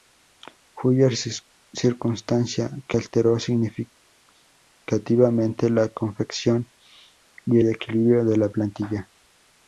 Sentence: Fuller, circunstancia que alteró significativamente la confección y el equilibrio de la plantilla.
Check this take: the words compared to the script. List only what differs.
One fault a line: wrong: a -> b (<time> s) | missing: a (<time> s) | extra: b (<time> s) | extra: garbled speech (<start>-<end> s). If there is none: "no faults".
no faults